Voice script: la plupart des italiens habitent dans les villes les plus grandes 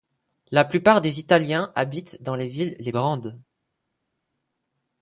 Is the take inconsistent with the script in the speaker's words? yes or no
yes